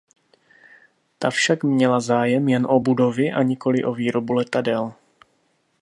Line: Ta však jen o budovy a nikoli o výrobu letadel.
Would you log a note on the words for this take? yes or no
yes